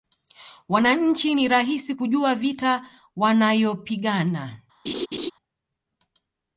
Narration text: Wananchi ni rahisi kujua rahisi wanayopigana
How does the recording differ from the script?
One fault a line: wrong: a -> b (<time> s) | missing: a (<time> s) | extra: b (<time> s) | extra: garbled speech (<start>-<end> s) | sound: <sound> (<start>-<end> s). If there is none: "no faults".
wrong: rahisi -> vita (2.3 s)
sound: laugh (4.9-5.3 s)